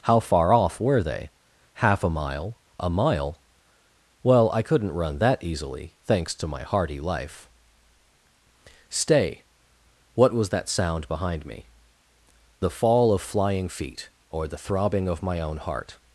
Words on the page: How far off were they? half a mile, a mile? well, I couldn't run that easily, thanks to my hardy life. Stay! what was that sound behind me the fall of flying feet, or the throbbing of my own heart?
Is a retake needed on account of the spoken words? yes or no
no